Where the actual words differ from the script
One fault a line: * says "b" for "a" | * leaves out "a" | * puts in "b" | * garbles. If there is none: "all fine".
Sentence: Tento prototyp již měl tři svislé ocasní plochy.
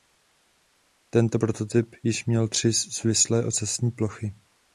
all fine